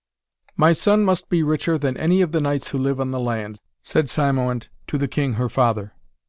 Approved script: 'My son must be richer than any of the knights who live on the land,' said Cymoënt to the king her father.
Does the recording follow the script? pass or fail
pass